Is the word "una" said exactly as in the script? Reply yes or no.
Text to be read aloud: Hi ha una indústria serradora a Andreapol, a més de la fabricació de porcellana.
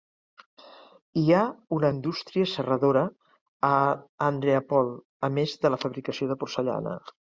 yes